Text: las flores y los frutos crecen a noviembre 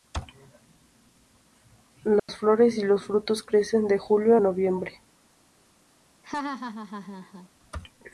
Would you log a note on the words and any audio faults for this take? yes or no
yes